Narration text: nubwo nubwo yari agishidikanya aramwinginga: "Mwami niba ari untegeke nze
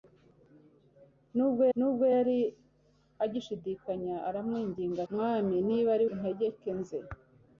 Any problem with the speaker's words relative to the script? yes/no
no